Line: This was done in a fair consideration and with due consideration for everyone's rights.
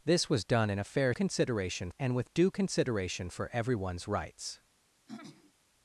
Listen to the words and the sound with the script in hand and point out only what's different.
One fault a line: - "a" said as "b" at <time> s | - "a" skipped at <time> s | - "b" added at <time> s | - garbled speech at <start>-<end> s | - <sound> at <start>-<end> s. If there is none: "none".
- throat clearing at 5.1-5.5 s